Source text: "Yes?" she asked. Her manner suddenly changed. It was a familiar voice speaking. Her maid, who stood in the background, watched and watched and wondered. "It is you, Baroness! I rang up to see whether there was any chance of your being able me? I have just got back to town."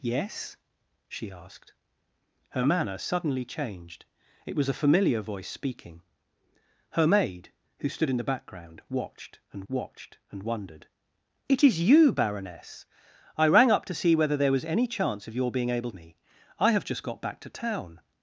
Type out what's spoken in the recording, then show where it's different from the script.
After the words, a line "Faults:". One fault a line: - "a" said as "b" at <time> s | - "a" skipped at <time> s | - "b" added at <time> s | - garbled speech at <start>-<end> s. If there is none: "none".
"Yes?" she asked. Her manner suddenly changed. It was a familiar voice speaking. Her maid, who stood in the background, watched and watched and wondered. "It is you, Baroness! I rang up to see whether there was any chance of your being able me? I have just got back to town."
Faults:
none